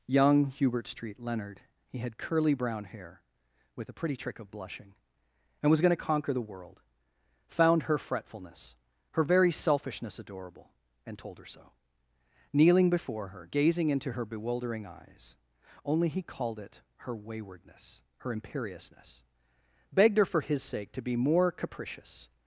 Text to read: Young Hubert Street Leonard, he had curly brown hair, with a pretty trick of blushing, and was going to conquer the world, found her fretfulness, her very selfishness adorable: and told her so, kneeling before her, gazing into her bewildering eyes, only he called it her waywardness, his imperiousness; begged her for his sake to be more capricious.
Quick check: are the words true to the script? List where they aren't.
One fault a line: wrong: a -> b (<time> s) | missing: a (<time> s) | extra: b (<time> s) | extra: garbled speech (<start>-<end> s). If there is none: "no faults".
wrong: his -> her (18.2 s)